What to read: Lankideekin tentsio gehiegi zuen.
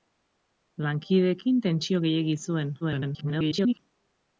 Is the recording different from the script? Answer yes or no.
yes